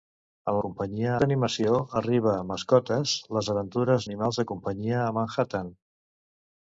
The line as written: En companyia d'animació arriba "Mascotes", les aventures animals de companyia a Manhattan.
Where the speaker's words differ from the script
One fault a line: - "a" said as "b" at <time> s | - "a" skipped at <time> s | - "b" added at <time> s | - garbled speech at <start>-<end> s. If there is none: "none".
none